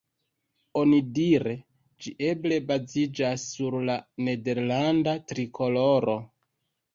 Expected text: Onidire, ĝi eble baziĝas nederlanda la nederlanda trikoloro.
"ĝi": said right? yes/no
yes